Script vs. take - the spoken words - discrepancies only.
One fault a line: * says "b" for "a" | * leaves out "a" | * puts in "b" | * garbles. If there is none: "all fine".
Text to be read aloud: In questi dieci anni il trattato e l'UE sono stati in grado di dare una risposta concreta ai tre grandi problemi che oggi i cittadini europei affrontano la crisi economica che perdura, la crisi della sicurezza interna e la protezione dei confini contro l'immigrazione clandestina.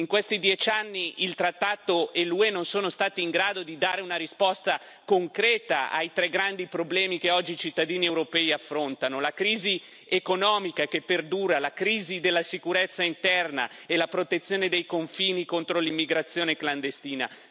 * puts in "non"